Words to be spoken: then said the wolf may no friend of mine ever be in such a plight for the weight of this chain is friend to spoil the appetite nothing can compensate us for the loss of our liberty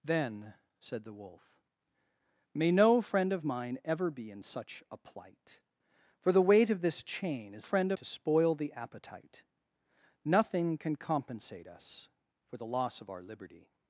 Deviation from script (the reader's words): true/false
false